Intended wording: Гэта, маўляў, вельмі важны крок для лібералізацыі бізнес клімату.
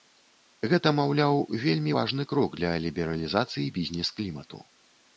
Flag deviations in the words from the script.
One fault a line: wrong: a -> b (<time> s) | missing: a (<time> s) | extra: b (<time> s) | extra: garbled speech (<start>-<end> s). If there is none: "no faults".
no faults